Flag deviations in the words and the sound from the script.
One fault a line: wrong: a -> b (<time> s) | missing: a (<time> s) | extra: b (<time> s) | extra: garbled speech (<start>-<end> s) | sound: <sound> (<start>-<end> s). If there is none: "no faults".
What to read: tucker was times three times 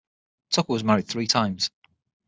wrong: times -> married (0.8 s)